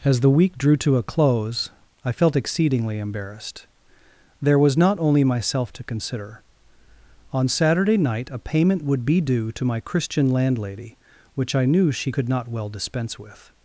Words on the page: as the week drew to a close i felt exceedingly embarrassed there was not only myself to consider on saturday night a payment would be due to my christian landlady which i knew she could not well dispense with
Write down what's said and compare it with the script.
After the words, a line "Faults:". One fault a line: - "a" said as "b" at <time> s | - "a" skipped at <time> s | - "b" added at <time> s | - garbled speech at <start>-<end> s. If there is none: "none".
as the week drew to a close i felt exceedingly embarrassed there was not only myself to consider on saturday night a payment would be due to my christian landlady which i knew she could not well dispense with
Faults:
none